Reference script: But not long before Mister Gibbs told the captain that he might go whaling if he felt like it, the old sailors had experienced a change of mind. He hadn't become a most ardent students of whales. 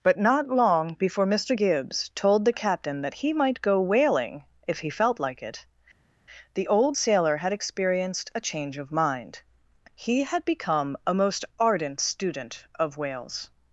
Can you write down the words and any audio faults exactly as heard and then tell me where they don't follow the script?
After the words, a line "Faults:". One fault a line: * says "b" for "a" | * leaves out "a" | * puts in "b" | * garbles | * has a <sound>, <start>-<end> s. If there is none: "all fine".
But not long before Mister Gibbs told the captain that he might go whaling if he felt like it, the old sailor had experienced a change of mind. He had become a most ardent student of whales.
Faults:
* says "sailor" for "sailors"
* says "had" for "hadn't"
* says "student" for "students"